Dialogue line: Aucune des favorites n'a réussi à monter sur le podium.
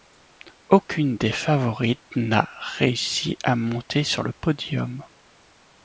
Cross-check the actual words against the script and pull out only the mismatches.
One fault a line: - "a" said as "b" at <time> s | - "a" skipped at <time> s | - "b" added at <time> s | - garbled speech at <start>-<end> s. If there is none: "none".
none